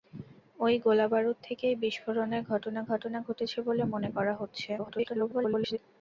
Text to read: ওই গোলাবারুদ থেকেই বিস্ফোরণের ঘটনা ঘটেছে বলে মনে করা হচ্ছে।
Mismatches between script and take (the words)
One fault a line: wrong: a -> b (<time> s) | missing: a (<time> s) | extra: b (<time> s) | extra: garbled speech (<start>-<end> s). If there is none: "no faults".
extra: ঘটনা (2.9 s)
extra: garbled speech (4.8-5.8 s)